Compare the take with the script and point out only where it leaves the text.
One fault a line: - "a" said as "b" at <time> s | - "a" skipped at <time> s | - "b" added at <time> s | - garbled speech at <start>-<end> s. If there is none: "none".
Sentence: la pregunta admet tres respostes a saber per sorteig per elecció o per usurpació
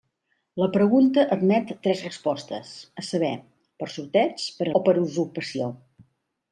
- "elecció" skipped at 4.7 s